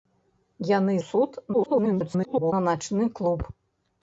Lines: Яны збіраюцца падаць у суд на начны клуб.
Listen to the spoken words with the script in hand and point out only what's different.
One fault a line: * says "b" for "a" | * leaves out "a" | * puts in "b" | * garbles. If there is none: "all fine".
* leaves out "збіраюцца падаць"
* garbles